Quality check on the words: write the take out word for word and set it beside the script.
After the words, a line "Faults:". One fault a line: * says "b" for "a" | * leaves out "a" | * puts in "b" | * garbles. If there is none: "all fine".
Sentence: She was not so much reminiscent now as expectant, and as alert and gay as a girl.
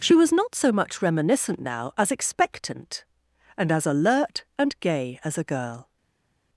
She was not so much reminiscent now as expectant, and as alert and gay as a girl.
Faults:
all fine